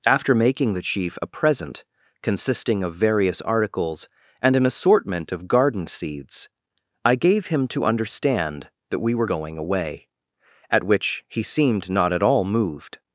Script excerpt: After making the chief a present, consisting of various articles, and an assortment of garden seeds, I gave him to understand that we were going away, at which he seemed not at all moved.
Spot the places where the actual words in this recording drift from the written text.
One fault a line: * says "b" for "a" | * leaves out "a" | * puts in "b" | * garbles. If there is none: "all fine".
all fine